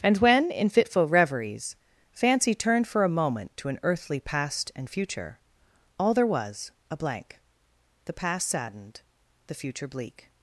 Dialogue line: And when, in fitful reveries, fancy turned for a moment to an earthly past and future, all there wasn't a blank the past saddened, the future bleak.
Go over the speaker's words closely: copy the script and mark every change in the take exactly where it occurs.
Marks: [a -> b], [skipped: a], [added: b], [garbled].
And when, in fitful reveries, fancy turned for a moment to an earthly past and future, all there [wasn't -> was] a blank the past saddened, the future bleak.